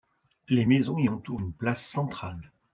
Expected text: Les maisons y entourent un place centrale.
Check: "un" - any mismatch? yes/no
yes